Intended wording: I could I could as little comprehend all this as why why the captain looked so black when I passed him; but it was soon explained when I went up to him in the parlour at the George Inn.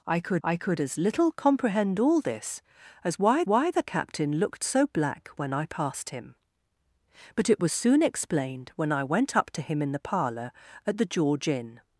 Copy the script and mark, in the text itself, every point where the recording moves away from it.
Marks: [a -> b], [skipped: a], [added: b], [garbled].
I could I could as little comprehend all this as why why the captain looked so black when I passed him; but it was soon explained when I went up to him in the parlour at the George Inn.